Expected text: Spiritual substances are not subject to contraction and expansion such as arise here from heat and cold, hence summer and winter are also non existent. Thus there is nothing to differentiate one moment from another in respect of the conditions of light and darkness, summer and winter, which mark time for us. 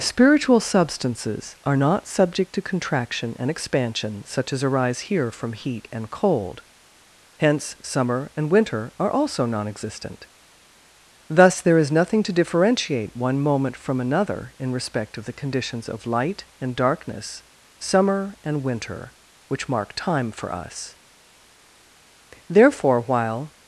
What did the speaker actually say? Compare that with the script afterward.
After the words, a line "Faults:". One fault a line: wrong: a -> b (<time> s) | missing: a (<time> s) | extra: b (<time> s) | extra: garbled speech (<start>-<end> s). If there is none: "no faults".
Spiritual substances are not subject to contraction and expansion such as arise here from heat and cold, hence summer and winter are also non existent. Thus there is nothing to differentiate one moment from another in respect of the conditions of light and darkness, summer and winter, which mark time for us. Therefore, while
Faults:
extra: Therefore while (22.5 s)